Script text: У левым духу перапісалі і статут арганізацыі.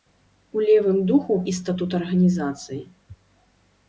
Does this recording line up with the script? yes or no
no